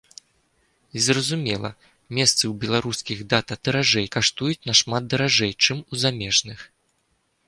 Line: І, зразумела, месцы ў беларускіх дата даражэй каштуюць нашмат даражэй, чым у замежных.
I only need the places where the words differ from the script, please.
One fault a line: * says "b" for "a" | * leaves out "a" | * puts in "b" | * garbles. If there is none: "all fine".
all fine